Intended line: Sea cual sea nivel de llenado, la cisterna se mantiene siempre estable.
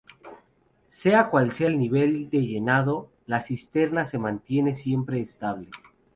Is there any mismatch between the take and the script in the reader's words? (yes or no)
yes